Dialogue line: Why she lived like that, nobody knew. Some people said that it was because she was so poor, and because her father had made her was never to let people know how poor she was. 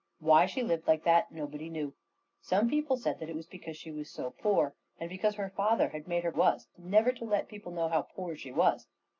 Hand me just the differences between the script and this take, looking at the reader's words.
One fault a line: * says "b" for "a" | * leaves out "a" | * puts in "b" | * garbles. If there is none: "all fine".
all fine